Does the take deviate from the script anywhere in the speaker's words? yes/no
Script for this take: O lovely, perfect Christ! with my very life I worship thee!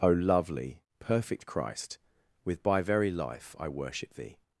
yes